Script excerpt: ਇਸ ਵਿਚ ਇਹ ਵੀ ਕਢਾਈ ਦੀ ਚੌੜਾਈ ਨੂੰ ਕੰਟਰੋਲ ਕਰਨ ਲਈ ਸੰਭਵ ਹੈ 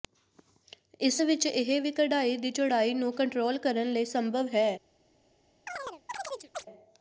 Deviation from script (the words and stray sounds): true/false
true